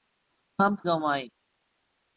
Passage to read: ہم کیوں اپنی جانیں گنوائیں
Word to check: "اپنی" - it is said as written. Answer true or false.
false